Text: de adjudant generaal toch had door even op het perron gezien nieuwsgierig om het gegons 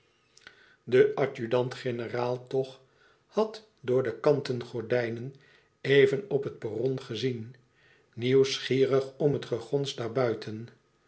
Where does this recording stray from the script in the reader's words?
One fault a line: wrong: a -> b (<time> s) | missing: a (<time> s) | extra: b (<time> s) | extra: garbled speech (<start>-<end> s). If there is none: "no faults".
extra: de kanten gordijnen (4.0 s)